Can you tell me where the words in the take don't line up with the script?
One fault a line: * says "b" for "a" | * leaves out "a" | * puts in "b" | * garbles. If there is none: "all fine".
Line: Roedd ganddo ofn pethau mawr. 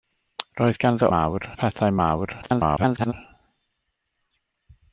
* says "mawr" for "ofn"
* garbles